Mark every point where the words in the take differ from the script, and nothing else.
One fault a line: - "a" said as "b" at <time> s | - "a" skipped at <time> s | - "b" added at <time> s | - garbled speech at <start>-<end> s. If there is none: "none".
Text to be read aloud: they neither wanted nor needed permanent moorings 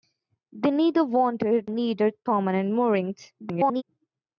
- "nor" skipped at 1.7 s
- garbled speech at 3.4-3.8 s